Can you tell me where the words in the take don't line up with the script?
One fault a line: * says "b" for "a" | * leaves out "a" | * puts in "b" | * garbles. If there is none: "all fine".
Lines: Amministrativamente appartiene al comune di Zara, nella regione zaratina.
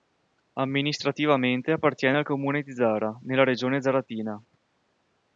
all fine